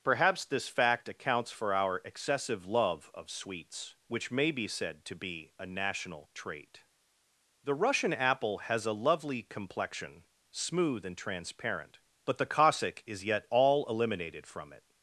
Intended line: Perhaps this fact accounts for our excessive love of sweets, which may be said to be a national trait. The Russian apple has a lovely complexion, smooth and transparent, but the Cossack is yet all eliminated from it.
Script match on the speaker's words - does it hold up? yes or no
yes